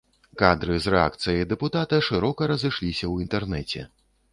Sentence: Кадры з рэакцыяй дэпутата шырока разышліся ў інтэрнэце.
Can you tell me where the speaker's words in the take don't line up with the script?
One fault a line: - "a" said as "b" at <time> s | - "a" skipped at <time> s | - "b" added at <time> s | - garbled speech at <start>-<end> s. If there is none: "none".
none